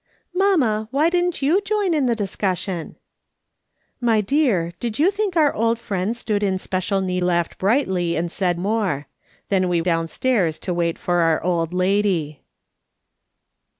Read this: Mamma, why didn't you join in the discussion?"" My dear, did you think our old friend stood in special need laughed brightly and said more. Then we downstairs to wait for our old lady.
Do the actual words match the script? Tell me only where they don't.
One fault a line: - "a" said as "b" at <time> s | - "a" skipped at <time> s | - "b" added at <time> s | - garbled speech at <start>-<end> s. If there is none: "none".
none